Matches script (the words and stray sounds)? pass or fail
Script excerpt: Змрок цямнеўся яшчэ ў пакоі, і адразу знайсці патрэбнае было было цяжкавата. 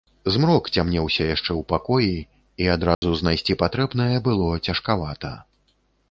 fail